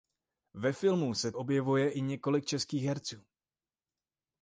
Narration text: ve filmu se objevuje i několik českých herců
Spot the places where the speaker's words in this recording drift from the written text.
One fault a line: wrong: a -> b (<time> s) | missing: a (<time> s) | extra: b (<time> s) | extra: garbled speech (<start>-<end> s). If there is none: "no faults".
no faults